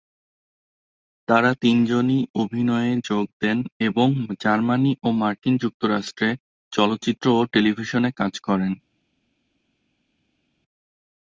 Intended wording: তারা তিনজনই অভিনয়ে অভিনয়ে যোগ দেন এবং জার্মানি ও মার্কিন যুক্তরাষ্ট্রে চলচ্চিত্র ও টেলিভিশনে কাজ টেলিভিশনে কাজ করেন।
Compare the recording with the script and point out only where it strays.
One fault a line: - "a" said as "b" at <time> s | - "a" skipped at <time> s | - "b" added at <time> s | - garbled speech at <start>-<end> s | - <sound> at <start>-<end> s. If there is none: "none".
- "অভিনয়ে" skipped at 2.9 s
- "টেলিভিশনে কাজ" skipped at 8.3 s